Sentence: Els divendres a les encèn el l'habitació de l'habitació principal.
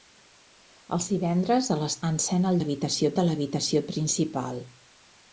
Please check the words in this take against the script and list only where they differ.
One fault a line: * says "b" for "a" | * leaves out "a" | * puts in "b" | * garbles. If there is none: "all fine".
all fine